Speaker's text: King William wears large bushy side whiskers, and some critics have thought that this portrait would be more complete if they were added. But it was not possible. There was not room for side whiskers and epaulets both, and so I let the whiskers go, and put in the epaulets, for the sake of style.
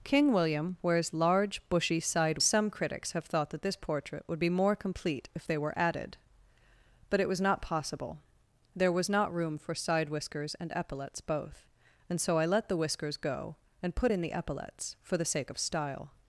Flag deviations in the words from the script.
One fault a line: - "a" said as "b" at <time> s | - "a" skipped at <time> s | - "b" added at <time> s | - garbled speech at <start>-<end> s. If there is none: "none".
- "whiskers and" skipped at 2.4 s